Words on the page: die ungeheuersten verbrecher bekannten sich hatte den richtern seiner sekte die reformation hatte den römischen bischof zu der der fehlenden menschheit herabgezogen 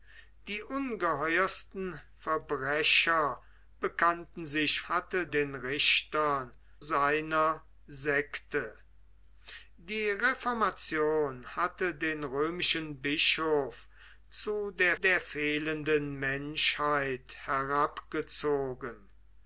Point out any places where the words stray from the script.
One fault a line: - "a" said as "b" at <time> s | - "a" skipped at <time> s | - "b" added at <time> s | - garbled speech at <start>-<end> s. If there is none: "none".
none